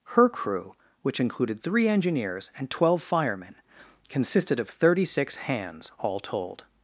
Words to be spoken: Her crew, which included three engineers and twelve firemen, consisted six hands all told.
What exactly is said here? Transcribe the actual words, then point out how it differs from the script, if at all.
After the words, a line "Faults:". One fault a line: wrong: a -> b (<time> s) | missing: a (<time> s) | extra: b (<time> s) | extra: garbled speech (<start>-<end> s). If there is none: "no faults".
Her crew, which included three engineers and twelve firemen, consisted of thirty six hands all told.
Faults:
extra: of thirty (4.6 s)